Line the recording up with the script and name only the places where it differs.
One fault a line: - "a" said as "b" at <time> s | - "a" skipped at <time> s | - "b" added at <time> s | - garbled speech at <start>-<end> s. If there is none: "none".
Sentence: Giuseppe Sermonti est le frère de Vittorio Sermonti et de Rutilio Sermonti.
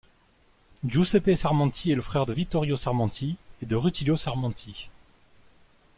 none